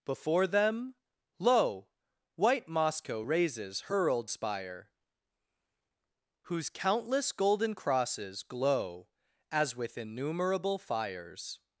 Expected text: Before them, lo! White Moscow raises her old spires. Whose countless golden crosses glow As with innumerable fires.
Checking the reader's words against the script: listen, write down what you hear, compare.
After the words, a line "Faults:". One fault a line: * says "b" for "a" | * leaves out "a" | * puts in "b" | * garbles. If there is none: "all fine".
Before them, lo! White Moscow raises her old spire. Whose countless golden crosses glow As with innumerable fires.
Faults:
* says "spire" for "spires"